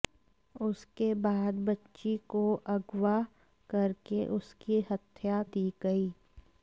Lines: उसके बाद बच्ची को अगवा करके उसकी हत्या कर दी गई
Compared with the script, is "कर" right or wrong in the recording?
wrong